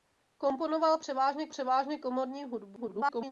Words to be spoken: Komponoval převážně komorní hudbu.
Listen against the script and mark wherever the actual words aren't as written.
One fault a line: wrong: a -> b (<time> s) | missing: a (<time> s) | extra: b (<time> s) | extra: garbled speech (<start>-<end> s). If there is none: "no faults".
extra: převážně (1.5 s)
extra: garbled speech (2.8-3.3 s)